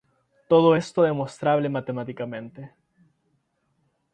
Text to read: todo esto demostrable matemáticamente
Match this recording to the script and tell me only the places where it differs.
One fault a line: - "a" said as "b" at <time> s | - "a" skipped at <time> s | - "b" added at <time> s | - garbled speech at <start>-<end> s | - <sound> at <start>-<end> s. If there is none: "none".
none